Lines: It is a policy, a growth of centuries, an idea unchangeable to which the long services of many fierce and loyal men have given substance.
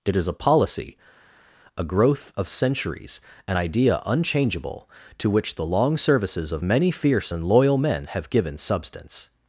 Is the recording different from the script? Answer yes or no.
no